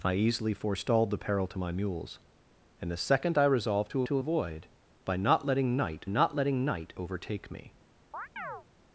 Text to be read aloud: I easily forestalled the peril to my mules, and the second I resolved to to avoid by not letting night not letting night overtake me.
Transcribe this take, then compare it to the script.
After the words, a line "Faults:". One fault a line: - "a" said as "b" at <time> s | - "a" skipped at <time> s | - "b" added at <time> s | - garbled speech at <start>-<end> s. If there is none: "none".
I easily forestalled the peril to my mules, and the second I resolved to to avoid by not letting night not letting night overtake me.
Faults:
none